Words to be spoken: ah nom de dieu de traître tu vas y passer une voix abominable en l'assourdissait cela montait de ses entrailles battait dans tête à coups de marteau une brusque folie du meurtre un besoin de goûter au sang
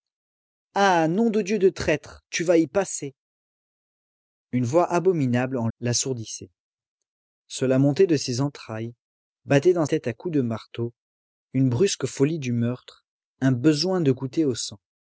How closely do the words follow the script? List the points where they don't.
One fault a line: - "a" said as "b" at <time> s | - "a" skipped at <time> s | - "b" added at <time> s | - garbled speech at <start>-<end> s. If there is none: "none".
none